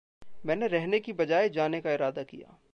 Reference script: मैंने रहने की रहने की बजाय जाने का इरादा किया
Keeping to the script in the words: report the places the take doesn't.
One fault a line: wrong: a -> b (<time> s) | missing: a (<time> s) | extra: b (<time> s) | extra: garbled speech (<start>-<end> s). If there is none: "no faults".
missing: रहने की (1.1 s)